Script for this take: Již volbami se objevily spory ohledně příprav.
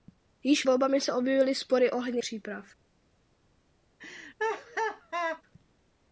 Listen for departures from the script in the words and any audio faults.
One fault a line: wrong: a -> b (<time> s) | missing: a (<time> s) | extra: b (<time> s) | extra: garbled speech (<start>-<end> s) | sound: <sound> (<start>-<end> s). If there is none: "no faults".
sound: laugh (4.0-5.4 s)